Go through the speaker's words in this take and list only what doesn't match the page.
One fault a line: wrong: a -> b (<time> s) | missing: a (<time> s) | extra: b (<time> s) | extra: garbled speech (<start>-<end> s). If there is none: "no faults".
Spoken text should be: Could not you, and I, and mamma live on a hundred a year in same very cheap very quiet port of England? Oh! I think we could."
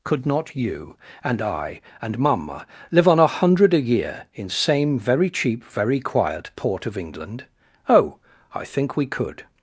no faults